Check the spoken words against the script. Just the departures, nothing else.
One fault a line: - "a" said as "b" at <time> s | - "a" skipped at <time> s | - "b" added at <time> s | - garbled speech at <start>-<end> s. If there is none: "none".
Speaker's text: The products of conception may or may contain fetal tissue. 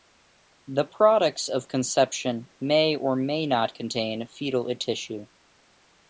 - "not" added at 3.5 s